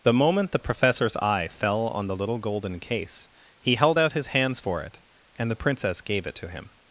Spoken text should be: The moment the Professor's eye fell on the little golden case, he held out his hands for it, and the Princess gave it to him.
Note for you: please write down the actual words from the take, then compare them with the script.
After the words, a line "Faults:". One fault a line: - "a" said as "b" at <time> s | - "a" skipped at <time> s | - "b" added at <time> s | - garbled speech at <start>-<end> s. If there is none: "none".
The moment the Professor's eye fell on the little golden case, he held out his hands for it, and the Princess gave it to him.
Faults:
none